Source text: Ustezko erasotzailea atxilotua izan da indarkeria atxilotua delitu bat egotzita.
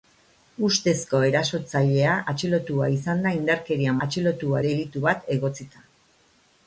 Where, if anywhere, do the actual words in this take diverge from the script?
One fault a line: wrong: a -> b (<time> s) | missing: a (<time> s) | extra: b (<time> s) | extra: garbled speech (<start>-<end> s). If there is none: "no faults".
no faults